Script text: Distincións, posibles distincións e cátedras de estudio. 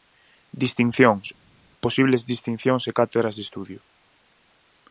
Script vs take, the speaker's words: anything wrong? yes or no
no